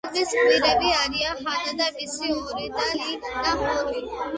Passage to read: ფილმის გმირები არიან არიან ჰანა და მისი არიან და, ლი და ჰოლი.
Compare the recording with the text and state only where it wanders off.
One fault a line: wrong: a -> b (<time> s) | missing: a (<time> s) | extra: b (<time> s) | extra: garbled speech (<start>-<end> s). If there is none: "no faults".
missing: არიან (1.4 s)
wrong: არიან -> ორი (2.4 s)